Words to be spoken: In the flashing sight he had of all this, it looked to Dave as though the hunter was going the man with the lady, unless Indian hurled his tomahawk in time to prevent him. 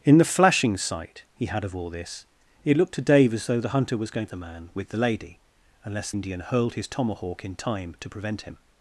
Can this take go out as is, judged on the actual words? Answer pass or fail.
pass